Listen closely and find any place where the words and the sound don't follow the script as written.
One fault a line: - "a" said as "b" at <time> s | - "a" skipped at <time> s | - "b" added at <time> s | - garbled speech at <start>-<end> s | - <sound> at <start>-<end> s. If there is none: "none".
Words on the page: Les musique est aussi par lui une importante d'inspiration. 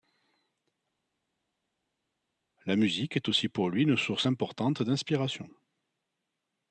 - "Les" said as "La" at 2.7 s
- "par" said as "pour" at 3.5 s
- "source" added at 4.0 s